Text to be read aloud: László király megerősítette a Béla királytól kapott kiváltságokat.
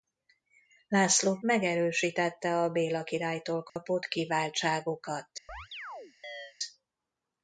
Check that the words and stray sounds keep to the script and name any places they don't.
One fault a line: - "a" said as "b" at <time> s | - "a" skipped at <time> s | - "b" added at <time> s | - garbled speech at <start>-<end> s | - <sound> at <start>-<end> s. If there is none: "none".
- "király" skipped at 1.4 s
- dropout at 3.7-3.8 s
- chirp at 5.5-6.5 s